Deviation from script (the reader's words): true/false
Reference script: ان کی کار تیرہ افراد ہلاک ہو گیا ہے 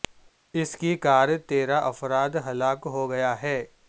true